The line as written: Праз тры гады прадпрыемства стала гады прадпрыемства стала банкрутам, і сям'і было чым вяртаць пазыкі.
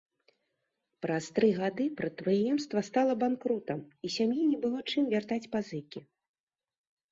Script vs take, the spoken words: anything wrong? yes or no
yes